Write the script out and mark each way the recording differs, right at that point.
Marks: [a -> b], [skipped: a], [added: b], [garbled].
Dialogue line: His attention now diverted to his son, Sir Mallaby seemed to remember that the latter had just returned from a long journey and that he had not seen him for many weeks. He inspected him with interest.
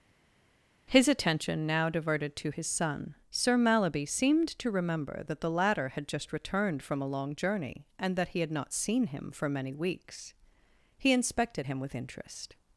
His attention now diverted to his son, Sir Mallaby seemed to remember that the latter had just returned from a long journey and that he had not seen him for many weeks. He inspected him with interest.